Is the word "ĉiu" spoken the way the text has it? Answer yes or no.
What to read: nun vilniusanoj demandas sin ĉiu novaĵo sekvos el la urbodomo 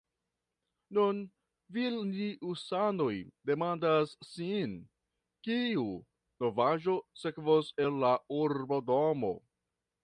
no